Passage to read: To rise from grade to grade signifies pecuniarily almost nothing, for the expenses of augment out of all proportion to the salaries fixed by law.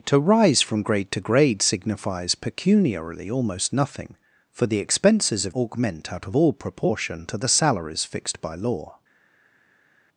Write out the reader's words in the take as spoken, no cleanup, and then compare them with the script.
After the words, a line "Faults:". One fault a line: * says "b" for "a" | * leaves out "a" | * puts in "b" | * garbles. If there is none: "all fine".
To rise from grade to grade signifies pecuniarily almost nothing, for the expenses of augment out of all proportion to the salaries fixed by law.
Faults:
all fine